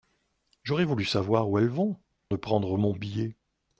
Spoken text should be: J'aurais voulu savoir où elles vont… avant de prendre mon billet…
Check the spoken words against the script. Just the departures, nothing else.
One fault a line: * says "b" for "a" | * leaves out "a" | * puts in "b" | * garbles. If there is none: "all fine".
* leaves out "avant"